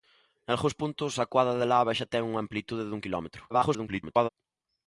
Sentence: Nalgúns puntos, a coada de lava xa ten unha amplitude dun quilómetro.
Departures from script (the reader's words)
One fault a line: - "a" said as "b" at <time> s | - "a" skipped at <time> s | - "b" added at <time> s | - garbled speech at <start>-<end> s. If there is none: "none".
- garbled speech at 3.5-4.3 s